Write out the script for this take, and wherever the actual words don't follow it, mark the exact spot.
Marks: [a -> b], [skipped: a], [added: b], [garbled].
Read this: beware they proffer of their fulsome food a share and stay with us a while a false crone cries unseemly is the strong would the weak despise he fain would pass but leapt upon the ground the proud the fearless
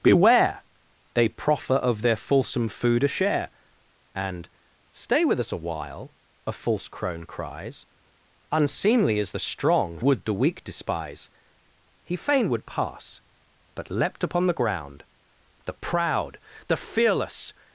beware they proffer of their fulsome food a share and stay with us a while a false crone cries unseemly is the strong would the weak despise he fain would pass but leapt upon the ground the proud the fearless